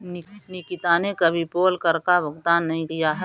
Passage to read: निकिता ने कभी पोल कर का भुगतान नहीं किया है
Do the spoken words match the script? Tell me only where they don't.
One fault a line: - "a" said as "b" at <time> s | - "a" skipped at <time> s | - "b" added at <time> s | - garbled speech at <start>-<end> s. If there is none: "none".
none